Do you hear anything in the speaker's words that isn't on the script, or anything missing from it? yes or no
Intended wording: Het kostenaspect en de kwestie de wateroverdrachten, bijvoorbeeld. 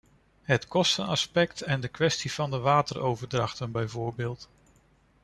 yes